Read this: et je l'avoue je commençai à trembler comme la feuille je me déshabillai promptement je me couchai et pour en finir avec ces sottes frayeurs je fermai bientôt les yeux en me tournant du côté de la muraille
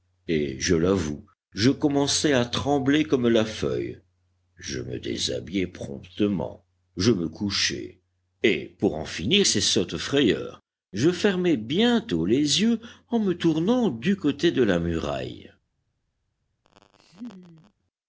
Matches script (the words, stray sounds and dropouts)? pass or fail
fail